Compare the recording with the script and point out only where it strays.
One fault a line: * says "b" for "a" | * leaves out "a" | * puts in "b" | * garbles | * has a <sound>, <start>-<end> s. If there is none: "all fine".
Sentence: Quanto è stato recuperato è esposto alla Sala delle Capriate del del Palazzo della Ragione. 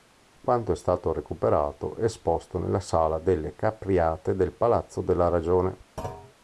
* says "nella" for "alla"
* leaves out "del"
* has a thud, 6.0-6.3 s